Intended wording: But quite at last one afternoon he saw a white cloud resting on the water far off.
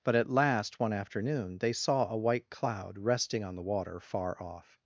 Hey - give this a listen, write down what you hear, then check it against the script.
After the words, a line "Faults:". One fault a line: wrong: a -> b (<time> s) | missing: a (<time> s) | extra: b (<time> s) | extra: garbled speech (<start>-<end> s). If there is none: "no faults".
But at last one afternoon they saw a white cloud resting on the water far off.
Faults:
missing: quite (0.1 s)
wrong: he -> they (1.6 s)